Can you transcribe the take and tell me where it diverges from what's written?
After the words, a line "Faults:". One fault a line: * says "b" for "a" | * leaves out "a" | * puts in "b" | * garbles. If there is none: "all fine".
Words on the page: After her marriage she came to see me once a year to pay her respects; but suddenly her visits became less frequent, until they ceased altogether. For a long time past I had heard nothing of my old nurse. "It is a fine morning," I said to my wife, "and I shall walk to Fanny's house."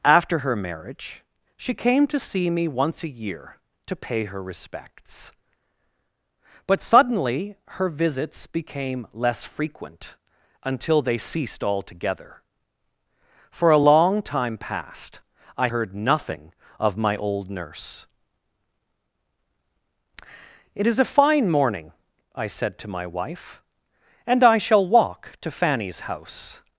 After her marriage she came to see me once a year to pay her respects; but suddenly her visits became less frequent, until they ceased altogether. For a long time past I heard nothing of my old nurse. "It is a fine morning," I said to my wife, "and I shall walk to Fanny's house."
Faults:
* leaves out "had"